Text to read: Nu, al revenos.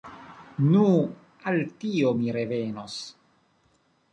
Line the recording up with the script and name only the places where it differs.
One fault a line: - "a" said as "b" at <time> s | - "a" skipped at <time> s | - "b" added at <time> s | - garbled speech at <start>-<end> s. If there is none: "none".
- "tio mi" added at 1.8 s